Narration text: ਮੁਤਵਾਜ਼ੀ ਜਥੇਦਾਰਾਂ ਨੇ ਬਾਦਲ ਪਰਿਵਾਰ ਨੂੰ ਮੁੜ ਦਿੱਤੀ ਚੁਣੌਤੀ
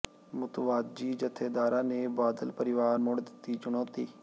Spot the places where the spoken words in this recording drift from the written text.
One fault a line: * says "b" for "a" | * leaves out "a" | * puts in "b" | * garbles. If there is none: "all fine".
* leaves out "ਨੂੰ"